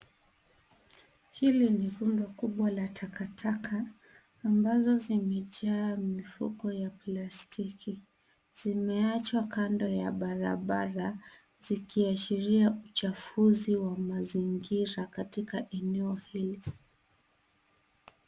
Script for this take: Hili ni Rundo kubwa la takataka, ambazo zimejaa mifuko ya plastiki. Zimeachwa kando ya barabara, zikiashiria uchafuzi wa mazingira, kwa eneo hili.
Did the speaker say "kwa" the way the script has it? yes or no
no